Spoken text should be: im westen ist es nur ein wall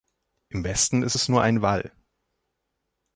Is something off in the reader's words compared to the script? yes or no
no